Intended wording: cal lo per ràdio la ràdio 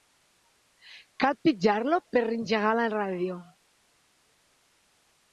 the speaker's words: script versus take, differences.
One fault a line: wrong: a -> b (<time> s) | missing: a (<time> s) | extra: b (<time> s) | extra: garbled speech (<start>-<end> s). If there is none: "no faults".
extra: pitjar (1.5 s)
wrong: ràdio -> engegar (2.4 s)